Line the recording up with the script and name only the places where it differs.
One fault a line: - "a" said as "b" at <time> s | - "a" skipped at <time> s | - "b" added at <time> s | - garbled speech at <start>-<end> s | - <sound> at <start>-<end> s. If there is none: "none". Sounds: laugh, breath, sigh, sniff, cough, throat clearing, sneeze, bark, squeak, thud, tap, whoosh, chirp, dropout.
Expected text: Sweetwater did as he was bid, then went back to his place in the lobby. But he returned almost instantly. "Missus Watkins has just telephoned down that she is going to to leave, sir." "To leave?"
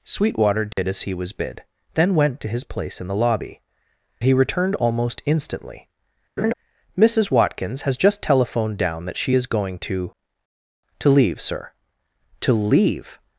- dropout at 0.7-0.8 s
- "back" skipped at 2.4 s
- "But" skipped at 3.6 s
- laugh at 6.4-6.5 s